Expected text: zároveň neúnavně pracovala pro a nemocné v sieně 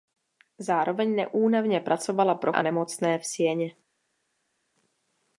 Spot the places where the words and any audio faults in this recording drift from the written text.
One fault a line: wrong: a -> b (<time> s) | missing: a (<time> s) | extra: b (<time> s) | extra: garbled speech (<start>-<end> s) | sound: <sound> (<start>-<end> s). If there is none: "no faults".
no faults